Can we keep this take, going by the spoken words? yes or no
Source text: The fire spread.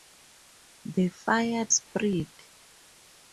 yes